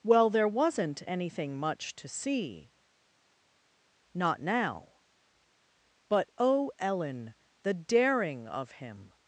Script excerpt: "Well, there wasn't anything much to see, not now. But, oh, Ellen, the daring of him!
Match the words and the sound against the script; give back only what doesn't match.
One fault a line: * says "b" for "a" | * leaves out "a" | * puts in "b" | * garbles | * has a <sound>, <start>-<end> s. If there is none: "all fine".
all fine